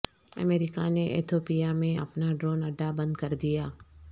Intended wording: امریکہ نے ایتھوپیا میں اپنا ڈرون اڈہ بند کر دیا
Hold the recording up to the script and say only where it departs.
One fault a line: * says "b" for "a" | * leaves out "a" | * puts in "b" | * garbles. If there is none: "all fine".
all fine